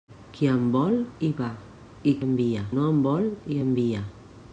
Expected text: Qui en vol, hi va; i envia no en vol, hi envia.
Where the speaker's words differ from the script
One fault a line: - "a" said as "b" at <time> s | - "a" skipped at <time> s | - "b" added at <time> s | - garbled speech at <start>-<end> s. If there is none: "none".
none